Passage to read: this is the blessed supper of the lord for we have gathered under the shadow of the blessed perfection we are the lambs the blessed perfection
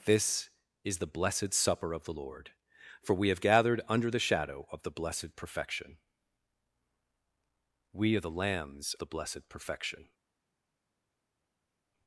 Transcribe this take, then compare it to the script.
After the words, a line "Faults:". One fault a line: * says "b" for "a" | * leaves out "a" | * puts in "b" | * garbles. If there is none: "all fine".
this is the blessed supper of the lord for we have gathered under the shadow of the blessed perfection we are the lambs the blessed perfection
Faults:
all fine